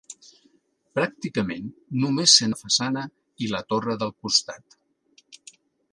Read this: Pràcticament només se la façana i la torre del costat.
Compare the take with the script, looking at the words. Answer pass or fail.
pass